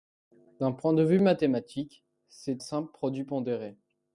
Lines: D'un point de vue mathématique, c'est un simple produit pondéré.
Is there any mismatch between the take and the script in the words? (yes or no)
yes